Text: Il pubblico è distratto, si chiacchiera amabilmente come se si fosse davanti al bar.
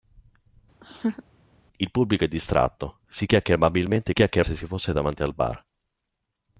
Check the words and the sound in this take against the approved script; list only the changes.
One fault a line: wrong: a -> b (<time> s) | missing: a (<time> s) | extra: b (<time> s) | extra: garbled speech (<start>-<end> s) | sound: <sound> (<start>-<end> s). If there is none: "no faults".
sound: laugh (0.8-1.2 s)
wrong: come -> chiacchiera (4.1 s)